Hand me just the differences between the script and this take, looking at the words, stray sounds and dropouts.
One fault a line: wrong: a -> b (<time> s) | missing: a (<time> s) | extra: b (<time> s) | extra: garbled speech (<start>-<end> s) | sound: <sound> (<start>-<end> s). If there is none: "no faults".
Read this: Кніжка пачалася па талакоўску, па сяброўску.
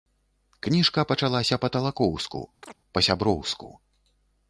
sound: chirp (2.6-2.8 s)